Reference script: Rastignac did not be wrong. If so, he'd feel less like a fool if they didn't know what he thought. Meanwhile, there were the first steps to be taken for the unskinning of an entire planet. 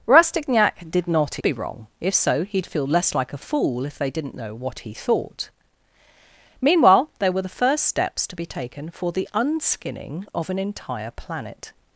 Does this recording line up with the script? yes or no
yes